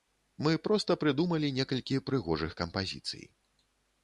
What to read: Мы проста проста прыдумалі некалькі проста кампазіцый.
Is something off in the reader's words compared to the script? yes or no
yes